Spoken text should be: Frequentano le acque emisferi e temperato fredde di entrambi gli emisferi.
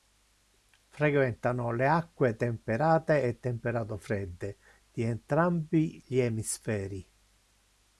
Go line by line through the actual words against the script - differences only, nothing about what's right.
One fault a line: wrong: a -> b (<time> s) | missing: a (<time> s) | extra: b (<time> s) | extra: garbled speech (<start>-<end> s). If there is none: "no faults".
wrong: emisferi -> temperate (2.4 s)